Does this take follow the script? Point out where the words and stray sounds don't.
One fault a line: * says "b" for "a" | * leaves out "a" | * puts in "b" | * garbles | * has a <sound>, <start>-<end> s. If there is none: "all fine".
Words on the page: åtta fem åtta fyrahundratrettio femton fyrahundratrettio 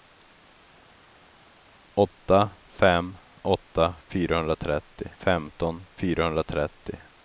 all fine